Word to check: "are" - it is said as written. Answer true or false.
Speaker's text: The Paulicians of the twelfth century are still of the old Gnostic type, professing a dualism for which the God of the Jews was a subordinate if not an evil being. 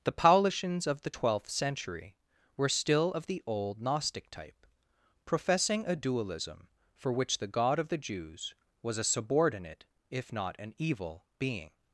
false